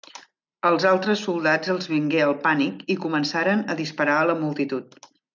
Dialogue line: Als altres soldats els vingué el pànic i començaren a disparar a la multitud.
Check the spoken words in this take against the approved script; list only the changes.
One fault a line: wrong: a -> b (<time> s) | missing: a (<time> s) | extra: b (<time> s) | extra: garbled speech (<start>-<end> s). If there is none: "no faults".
no faults